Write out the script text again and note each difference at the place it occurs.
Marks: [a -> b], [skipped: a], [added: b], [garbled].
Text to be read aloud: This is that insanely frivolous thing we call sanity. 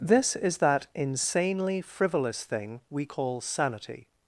This is that insanely frivolous thing we call sanity.